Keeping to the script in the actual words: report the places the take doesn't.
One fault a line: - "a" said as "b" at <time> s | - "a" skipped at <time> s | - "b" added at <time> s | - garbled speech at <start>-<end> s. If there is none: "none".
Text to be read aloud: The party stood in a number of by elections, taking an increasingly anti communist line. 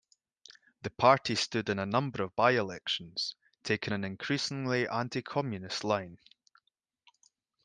none